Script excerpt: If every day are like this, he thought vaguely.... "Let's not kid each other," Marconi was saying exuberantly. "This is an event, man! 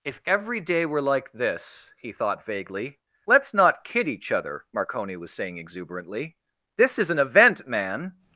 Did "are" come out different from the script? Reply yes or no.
yes